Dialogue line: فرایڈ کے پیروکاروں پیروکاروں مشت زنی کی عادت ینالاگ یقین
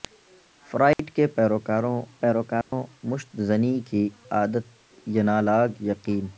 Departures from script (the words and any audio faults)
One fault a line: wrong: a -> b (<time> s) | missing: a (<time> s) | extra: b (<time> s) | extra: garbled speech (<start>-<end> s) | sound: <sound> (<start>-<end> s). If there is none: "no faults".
sound: dropout (0.9-1.0 s)
sound: dropout (2.6-2.7 s)